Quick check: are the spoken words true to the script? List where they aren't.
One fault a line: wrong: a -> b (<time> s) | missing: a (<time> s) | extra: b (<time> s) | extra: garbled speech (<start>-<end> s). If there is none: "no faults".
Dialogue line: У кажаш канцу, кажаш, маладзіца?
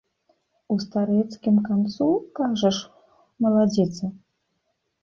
wrong: кажаш -> старэцкім (0.8 s)